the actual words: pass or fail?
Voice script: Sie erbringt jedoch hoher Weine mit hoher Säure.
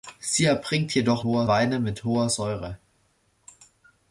pass